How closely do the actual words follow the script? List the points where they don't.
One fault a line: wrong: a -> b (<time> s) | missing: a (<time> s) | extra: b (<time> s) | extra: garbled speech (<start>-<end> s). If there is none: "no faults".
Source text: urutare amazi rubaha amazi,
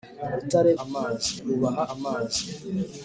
no faults